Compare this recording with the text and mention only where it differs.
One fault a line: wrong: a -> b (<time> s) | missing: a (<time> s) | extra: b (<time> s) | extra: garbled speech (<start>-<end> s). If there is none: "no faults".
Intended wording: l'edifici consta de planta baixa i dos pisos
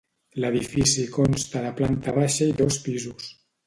no faults